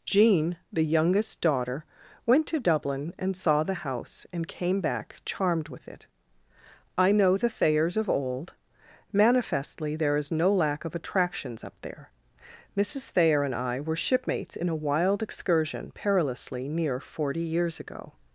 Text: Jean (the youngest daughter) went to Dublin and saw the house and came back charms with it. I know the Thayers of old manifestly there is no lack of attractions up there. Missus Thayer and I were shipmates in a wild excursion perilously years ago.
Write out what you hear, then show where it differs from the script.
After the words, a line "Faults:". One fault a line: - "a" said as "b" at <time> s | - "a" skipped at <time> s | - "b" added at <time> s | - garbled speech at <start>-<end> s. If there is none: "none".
Jean (the youngest daughter) went to Dublin and saw the house and came back charmed with it. I know the Thayers of old manifestly there is no lack of attractions up there. Missus Thayer and I were shipmates in a wild excursion perilously near forty years ago.
Faults:
- "charms" said as "charmed" at 5.2 s
- "near forty" added at 16.7 s